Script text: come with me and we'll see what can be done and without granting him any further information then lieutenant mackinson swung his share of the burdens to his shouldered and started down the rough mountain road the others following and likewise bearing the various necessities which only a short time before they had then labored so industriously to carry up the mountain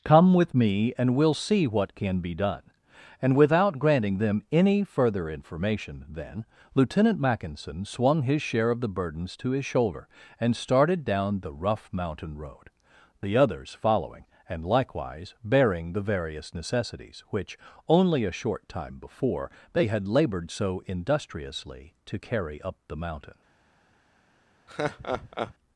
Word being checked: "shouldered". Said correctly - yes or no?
no